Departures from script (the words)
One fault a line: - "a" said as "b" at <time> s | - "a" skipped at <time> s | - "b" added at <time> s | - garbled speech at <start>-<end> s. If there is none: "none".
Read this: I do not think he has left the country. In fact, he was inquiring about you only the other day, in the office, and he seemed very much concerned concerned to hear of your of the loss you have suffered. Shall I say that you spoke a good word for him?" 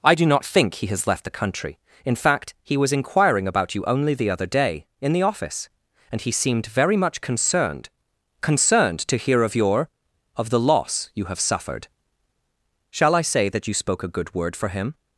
none